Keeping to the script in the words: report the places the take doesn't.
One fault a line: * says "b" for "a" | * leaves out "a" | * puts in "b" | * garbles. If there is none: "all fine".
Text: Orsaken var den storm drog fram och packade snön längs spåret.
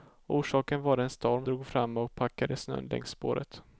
all fine